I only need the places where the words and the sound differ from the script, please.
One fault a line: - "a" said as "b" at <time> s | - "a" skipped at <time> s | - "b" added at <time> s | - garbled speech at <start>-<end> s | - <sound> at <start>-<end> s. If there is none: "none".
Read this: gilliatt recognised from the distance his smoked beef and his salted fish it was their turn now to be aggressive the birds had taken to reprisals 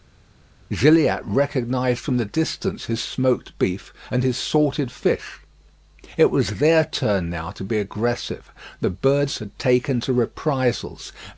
none